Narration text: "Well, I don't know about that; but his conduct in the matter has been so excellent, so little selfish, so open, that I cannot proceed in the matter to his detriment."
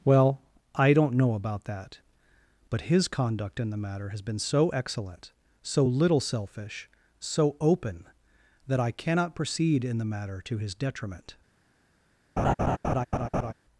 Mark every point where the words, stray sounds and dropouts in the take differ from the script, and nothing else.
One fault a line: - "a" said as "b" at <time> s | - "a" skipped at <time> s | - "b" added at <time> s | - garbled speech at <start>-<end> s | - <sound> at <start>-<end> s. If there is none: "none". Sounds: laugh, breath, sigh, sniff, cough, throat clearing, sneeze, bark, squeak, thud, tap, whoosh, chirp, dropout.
- laugh at 12.4-13.5 s